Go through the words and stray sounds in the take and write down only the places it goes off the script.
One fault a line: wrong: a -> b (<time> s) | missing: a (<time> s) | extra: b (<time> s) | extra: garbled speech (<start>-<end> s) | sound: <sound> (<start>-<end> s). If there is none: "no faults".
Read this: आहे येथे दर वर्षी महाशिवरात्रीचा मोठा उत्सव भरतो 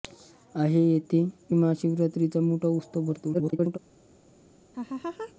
missing: दर वर्षी (1.2 s)
extra: garbled speech (3.3-3.8 s)
sound: laugh (4.7-5.3 s)